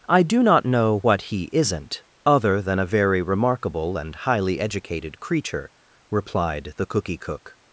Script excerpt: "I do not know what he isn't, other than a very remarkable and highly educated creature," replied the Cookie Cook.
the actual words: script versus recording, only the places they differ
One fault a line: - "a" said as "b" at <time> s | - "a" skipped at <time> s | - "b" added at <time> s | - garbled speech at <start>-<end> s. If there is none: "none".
none